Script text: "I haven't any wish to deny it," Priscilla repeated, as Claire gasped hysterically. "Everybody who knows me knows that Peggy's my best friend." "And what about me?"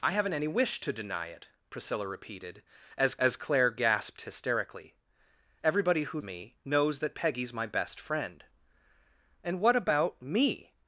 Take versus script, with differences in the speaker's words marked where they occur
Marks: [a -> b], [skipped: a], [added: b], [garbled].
"I haven't any wish to deny it," Priscilla repeated, as [added: as] Claire gasped hysterically. "Everybody who [skipped: knows] me knows that Peggy's my best friend." "And what about me?"